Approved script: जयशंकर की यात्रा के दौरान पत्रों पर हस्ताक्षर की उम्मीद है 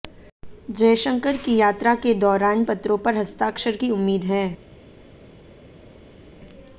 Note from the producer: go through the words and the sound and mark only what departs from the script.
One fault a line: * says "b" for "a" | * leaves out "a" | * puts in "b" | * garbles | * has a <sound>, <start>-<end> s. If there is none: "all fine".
all fine